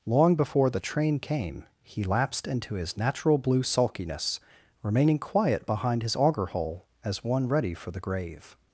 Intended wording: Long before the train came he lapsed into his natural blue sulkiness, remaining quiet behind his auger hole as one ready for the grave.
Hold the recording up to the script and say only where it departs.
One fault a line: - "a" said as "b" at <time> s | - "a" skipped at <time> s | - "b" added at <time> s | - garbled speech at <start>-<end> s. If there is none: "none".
none